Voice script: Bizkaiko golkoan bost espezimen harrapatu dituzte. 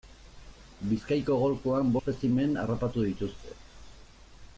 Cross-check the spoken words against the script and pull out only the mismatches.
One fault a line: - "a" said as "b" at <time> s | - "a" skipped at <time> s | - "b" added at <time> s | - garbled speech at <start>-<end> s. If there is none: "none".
- "bost" skipped at 1.9 s